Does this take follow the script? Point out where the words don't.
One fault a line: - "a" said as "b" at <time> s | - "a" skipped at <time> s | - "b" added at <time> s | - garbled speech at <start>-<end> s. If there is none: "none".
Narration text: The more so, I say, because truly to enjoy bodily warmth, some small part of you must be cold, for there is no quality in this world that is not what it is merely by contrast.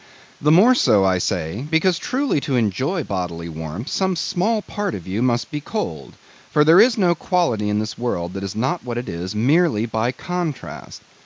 none